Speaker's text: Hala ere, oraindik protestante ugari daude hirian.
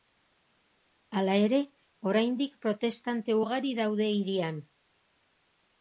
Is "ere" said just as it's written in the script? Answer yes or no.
yes